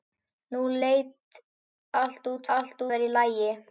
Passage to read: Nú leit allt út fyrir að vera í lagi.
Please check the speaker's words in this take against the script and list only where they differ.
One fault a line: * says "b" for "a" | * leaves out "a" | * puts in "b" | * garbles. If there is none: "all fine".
* says "allt" for "fyrir"